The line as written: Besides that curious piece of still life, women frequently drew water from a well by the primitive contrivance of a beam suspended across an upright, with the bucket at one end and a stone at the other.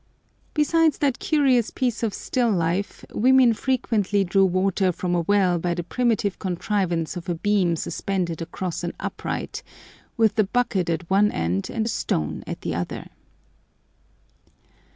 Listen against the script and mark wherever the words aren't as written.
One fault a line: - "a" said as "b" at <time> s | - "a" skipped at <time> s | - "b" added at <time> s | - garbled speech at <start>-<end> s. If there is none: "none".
none